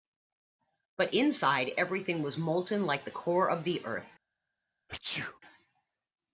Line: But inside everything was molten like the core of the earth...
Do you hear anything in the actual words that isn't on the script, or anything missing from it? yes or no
no